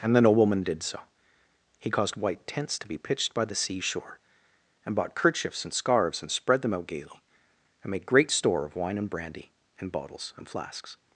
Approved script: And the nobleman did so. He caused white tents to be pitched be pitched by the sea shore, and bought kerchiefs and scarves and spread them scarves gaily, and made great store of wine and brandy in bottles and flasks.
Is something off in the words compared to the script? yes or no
yes